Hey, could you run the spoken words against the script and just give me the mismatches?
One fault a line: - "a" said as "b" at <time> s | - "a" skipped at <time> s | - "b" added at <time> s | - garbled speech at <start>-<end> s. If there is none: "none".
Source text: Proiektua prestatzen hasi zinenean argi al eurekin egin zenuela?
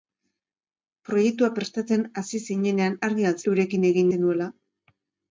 none